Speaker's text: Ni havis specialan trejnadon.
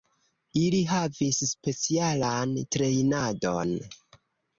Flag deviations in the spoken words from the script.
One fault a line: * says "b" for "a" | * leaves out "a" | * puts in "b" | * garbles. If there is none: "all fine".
* says "Ili" for "Ni"